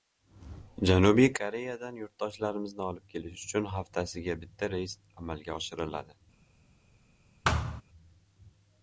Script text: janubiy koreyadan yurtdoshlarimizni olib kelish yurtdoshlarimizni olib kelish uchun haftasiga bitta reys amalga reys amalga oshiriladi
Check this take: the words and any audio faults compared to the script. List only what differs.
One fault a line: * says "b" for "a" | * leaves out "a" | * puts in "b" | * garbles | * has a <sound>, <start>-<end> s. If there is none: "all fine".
* leaves out "yurtdoshlarimizni olib kelish"
* leaves out "reys amalga"
* has a thud, 7.4-7.8 s